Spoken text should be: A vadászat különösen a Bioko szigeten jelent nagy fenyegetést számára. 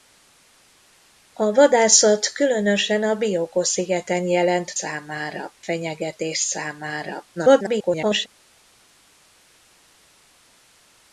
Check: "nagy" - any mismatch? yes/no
yes